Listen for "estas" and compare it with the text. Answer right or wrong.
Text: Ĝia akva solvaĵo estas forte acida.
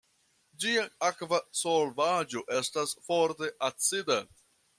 right